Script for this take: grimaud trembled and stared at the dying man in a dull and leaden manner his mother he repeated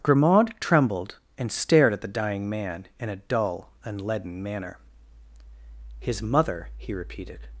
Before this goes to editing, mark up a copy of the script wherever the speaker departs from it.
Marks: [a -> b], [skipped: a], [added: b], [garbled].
grimaud trembled and stared at the dying man in a dull and leaden manner his mother he repeated